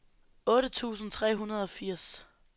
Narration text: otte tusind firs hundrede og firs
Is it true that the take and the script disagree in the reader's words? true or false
true